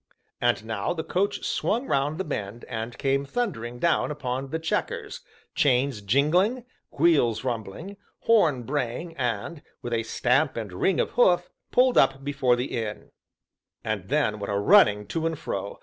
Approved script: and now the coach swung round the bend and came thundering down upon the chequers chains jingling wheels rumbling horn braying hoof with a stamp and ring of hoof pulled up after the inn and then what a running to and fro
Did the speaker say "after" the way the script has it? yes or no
no